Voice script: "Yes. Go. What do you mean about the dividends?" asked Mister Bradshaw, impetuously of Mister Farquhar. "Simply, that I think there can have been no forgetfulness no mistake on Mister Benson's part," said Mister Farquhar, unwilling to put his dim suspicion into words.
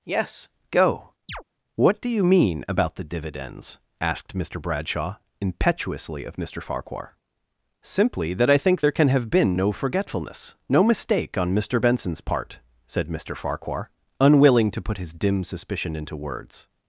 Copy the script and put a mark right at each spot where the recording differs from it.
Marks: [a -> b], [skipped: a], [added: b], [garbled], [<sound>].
"Yes. Go. [chirp] What do you mean about the dividends?" asked Mister Bradshaw, impetuously of Mister Farquhar. "Simply, that I think there can have been no forgetfulness no mistake on Mister Benson's part," said Mister Farquhar, unwilling to put his dim suspicion into words.